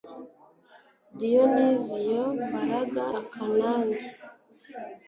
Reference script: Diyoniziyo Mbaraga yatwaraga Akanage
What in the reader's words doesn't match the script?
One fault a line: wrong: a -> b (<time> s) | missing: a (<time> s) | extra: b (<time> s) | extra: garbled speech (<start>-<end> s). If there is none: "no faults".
missing: yatwaraga (3.0 s)